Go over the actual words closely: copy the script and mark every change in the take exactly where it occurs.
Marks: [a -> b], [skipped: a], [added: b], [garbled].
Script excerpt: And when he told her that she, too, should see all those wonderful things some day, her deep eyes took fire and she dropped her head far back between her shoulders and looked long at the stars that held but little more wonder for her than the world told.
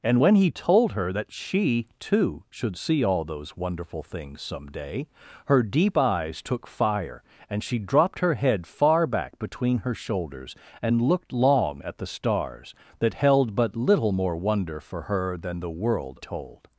And when he told her that she, too, should see all those wonderful things some day, her deep eyes took fire and she dropped her head far back between her shoulders and looked long at the stars that held but little more wonder for her than the world told.